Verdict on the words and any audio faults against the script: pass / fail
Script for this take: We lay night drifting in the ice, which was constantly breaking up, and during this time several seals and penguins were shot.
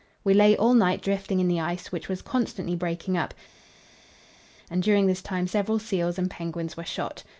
fail